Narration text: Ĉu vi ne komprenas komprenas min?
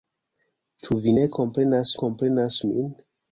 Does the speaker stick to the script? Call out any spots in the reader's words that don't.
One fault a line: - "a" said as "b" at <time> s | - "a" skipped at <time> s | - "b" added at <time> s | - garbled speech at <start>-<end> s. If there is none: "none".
none